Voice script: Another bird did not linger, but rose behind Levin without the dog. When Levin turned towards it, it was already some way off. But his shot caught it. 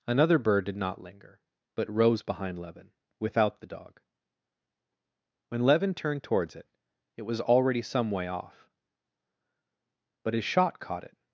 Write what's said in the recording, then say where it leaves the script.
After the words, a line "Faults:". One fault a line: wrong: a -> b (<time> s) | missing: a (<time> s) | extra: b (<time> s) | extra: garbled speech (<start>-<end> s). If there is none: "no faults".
Another bird did not linger, but rose behind Levin without the dog. When Levin turned towards it, it was already some way off. But his shot caught it.
Faults:
no faults